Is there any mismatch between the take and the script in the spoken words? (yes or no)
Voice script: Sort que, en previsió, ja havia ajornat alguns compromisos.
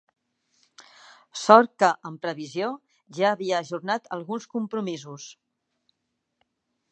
no